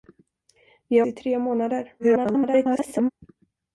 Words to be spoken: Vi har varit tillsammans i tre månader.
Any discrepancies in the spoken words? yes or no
yes